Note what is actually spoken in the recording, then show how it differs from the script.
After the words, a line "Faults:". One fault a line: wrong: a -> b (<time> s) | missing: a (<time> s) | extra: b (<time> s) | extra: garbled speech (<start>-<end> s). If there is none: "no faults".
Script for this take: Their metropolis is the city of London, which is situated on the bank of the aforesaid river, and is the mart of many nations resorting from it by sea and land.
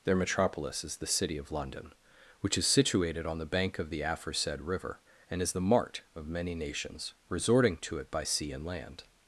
Their metropolis is the city of London, which is situated on the bank of the aforesaid river, and is the mart of many nations resorting to it by sea and land.
Faults:
wrong: from -> to (7.8 s)